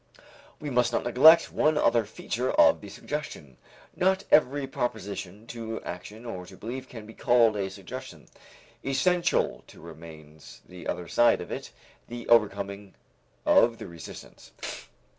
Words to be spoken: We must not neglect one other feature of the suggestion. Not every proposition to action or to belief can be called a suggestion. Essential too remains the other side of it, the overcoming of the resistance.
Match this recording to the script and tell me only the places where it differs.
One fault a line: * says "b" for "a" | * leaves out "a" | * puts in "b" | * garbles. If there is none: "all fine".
all fine